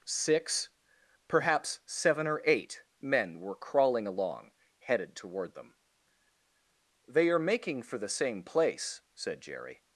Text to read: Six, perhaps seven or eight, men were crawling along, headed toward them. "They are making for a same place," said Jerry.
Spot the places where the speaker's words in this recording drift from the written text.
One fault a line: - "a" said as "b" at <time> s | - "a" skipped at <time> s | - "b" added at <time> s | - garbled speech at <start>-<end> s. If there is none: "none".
- "a" said as "the" at 8.0 s